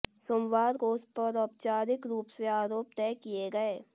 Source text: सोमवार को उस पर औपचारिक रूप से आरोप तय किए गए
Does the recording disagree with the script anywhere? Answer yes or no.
no